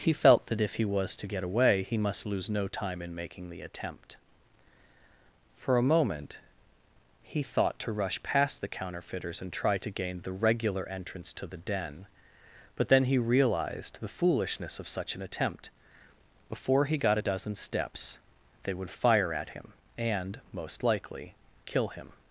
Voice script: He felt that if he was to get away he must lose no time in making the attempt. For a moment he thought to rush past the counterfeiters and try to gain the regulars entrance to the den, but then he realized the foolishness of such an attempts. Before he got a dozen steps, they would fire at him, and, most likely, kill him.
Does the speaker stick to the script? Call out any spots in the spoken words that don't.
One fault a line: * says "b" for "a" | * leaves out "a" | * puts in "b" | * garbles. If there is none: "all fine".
* says "regular" for "regulars"
* says "attempt" for "attempts"